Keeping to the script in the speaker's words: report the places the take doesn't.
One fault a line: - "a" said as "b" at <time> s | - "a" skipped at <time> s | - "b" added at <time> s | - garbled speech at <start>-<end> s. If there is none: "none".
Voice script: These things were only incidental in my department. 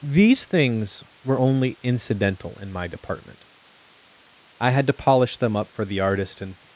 - "I had to polish them up for the artist and" added at 4.6 s